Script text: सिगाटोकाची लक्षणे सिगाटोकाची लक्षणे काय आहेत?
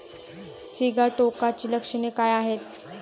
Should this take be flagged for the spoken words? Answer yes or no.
yes